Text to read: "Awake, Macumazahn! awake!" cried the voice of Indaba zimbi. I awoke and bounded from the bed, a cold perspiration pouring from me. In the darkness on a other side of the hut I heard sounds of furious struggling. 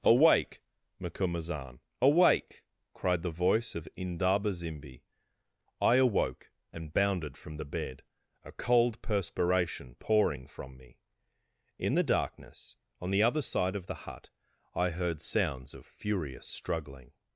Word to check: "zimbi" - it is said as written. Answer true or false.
true